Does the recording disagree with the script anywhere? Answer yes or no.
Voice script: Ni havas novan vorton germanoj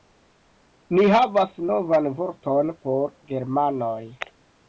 yes